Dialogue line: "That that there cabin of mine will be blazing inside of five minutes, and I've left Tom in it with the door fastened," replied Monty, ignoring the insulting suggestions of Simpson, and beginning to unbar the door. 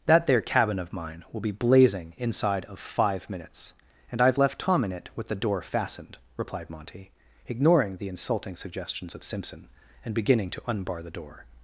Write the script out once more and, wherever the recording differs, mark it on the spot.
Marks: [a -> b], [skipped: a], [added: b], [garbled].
"That [skipped: that] there cabin of mine will be blazing inside of five minutes, and I've left Tom in it with the door fastened," replied Monty, ignoring the insulting suggestions of Simpson, and beginning to unbar the door.